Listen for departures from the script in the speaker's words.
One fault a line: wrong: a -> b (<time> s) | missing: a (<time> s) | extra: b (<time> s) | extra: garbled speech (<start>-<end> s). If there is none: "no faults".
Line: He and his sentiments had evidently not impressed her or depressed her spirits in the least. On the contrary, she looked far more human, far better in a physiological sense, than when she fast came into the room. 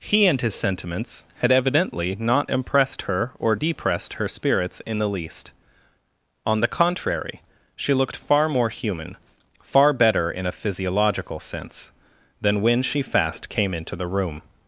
no faults